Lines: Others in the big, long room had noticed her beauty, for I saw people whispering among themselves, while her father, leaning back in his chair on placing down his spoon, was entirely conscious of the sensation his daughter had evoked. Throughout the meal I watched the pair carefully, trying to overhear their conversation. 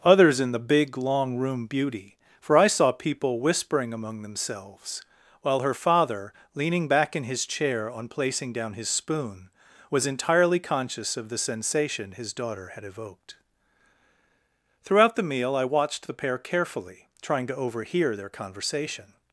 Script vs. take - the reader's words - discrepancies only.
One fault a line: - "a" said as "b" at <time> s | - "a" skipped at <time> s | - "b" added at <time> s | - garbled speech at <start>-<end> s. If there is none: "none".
- "had noticed her" skipped at 1.7 s